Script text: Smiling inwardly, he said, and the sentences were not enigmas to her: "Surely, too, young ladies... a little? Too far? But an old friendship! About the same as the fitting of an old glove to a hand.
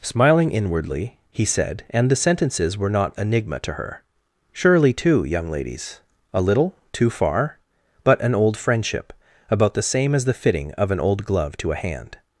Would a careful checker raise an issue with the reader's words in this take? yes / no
yes